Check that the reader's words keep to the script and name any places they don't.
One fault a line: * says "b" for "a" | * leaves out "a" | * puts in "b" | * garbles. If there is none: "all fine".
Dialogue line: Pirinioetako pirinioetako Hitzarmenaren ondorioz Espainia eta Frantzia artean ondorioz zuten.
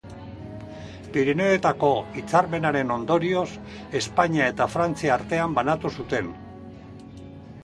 * leaves out "pirinioetako"
* says "banatu" for "ondorioz"